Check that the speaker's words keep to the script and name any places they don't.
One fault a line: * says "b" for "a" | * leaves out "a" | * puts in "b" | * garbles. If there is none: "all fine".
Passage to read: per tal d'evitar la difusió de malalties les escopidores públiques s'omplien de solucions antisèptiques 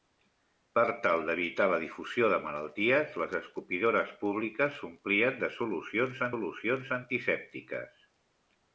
* puts in "solucions"